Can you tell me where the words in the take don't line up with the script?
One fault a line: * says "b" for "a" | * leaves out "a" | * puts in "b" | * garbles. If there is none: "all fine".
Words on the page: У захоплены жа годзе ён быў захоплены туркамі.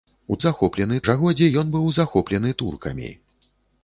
all fine